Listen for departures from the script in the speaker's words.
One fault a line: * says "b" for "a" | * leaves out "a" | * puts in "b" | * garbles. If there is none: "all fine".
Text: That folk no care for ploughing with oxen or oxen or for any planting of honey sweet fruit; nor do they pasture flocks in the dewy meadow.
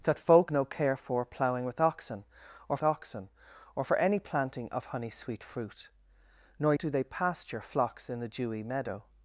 all fine